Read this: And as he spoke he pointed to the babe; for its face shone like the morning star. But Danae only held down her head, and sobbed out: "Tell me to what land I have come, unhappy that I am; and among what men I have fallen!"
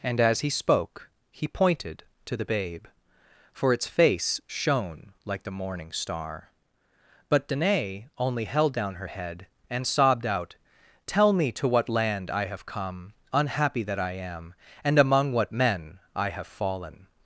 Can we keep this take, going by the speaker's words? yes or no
yes